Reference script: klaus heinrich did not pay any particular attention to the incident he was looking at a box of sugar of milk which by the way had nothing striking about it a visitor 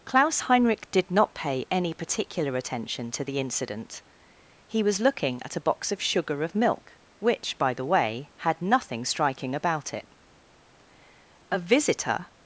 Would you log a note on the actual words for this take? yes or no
no